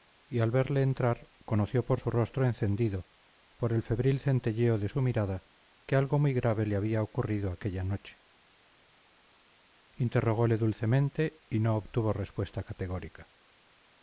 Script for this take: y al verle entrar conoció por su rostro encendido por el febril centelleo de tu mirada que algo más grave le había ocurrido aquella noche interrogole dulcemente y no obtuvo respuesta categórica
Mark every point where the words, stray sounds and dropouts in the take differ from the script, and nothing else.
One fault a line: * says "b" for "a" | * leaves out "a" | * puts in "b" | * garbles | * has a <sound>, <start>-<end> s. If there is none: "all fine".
* says "su" for "tu"
* says "muy" for "más"